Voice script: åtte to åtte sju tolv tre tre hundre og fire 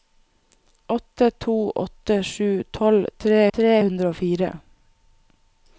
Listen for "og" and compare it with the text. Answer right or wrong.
right